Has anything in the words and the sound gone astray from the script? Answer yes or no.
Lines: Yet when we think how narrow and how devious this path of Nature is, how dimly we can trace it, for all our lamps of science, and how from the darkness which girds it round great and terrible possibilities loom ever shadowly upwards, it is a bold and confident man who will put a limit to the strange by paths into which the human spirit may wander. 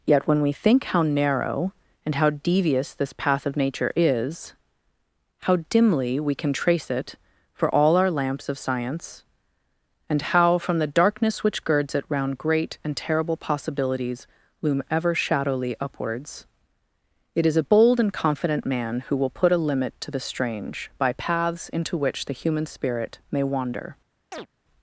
yes